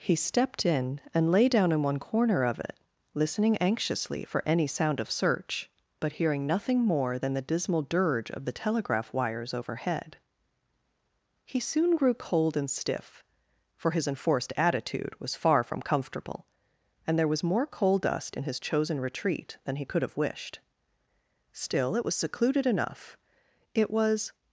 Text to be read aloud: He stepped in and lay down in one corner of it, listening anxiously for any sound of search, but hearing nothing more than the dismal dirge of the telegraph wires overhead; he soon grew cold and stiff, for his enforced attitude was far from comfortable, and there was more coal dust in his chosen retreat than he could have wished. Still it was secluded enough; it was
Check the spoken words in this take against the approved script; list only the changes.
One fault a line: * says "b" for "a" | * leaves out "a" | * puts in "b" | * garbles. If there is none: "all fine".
all fine